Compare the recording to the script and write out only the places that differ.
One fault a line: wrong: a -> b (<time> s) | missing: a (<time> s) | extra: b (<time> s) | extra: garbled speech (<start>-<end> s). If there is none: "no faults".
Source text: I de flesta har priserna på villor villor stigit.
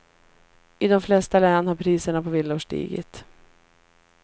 extra: län (1.4 s)
missing: villor (2.6 s)